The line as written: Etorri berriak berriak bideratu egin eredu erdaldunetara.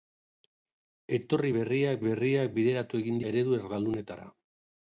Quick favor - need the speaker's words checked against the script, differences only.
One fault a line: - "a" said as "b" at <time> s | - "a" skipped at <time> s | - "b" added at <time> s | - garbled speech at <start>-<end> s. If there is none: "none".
none